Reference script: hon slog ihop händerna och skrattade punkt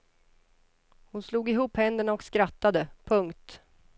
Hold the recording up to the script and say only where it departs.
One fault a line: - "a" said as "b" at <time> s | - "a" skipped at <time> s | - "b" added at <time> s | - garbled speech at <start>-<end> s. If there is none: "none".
none